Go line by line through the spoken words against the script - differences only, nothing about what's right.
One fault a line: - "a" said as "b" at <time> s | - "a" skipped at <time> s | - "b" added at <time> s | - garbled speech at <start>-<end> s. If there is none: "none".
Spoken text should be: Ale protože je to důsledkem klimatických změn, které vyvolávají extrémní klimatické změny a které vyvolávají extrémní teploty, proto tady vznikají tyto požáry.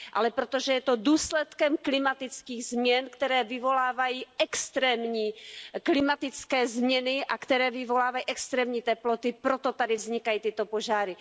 none